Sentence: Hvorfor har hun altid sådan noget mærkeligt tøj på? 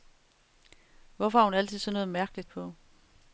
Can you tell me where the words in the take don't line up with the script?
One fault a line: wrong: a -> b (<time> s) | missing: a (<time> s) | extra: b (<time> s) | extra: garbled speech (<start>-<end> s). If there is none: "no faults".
missing: tøj (2.5 s)